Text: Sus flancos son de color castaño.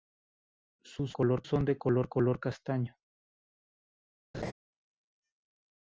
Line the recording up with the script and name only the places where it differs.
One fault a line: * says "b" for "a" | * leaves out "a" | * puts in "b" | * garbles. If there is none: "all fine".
* says "color" for "flancos"
* puts in "color"